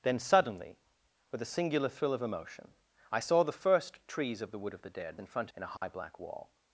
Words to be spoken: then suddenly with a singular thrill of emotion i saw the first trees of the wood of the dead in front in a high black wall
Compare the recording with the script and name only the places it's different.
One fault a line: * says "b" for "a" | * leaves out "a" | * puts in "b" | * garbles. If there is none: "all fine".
all fine